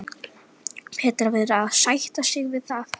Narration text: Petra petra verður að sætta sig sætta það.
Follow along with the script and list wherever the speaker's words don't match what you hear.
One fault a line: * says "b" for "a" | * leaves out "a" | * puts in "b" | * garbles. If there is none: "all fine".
* leaves out "petra"
* says "við" for "sætta"